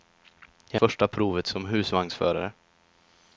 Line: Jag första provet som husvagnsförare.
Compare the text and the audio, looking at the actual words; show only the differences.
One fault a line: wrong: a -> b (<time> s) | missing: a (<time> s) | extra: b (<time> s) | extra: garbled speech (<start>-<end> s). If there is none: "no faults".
no faults